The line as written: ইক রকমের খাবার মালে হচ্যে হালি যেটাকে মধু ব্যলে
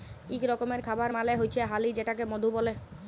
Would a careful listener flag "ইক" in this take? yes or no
no